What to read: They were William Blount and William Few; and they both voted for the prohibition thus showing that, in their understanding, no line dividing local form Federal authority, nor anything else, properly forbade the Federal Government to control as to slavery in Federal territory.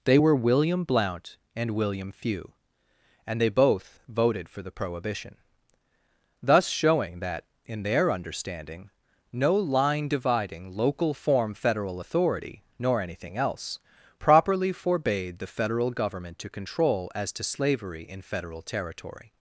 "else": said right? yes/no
yes